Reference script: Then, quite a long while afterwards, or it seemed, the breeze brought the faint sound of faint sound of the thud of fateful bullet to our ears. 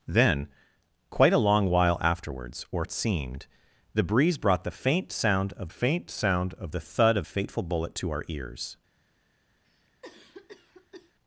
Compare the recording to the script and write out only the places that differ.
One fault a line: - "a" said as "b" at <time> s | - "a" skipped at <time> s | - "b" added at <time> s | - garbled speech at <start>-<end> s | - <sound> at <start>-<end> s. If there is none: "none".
- cough at 9.6-11.1 s